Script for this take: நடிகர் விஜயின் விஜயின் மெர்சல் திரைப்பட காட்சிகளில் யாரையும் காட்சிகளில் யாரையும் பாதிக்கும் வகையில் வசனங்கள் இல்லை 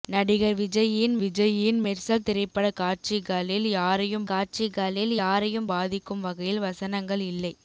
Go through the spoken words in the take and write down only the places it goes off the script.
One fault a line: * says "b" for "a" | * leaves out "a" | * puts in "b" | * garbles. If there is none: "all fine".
all fine